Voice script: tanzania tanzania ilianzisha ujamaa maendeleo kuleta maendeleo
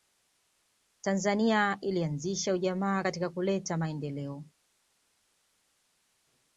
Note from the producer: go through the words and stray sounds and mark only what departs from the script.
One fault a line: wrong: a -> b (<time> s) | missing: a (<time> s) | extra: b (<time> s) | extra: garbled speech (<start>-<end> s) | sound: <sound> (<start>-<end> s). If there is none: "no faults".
missing: tanzania (1.8 s)
wrong: maendeleo -> katika (3.0 s)